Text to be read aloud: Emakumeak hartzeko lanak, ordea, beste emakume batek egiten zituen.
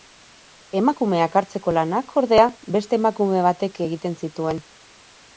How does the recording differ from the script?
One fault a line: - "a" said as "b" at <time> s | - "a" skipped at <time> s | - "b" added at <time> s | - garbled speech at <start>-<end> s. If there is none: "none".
none